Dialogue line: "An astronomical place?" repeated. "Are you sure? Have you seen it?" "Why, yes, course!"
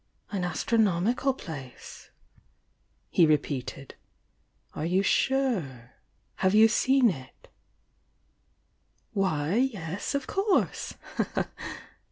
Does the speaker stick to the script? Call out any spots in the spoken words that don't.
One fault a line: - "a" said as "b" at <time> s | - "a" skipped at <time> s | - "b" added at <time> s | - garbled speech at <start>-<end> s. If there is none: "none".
- "he" added at 3.1 s
- "of" added at 10.1 s